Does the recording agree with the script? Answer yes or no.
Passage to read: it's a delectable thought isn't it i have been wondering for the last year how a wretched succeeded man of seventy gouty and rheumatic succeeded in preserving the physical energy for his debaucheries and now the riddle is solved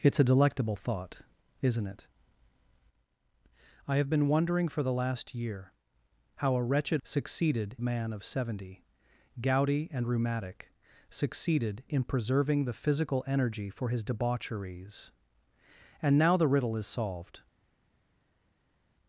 yes